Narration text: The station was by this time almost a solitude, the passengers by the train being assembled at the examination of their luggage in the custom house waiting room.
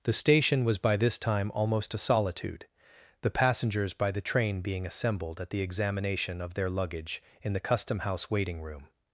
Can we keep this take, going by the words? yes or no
yes